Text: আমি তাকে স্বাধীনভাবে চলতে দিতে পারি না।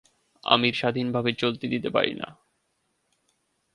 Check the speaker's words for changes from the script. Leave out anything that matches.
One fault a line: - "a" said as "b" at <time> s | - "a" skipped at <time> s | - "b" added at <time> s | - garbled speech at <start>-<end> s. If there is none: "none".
- "তাকে" skipped at 0.7 s